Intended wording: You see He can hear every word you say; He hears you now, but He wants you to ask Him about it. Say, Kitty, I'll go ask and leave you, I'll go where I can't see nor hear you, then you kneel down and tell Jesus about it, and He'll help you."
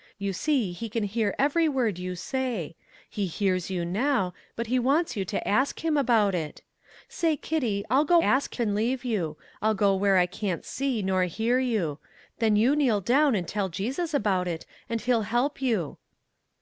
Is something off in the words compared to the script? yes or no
no